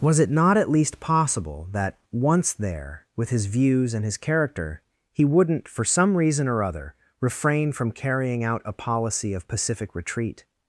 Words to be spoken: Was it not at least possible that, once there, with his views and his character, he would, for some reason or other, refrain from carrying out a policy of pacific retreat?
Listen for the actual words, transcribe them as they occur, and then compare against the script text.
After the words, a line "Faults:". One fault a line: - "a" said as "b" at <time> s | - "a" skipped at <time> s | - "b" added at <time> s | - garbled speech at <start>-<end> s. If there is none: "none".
Was it not at least possible that, once there, with his views and his character, he wouldn't, for some reason or other, refrain from carrying out a policy of pacific retreat?
Faults:
- "would" said as "wouldn't" at 5.2 s